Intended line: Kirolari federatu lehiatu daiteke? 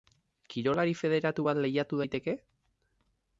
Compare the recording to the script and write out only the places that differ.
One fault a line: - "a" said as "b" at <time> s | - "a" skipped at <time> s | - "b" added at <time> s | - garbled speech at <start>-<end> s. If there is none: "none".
- "bat" added at 1.5 s